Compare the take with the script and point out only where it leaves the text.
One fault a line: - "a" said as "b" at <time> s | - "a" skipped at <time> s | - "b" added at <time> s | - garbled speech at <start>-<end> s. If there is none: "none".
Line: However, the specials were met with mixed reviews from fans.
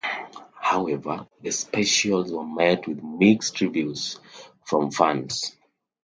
none